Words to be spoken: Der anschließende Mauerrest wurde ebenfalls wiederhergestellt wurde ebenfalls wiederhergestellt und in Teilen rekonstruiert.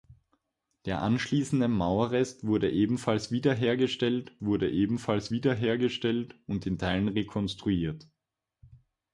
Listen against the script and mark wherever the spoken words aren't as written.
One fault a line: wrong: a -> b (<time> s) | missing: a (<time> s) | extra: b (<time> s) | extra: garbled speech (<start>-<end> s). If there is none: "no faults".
no faults